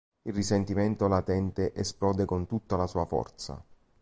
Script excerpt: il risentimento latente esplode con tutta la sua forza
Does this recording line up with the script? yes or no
yes